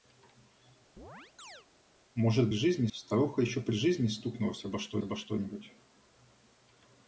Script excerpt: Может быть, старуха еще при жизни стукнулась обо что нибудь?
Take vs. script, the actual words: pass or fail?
fail